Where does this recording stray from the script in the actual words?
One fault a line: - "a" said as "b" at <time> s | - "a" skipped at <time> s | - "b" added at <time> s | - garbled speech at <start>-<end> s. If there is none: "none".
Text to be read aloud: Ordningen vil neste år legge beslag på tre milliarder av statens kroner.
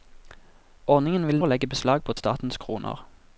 - "neste" skipped at 1.4 s
- "tre milliarder av" skipped at 2.1 s